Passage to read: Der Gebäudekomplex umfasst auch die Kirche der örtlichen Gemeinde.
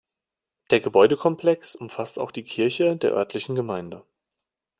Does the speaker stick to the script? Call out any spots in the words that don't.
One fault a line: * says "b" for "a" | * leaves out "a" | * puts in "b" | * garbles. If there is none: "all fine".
all fine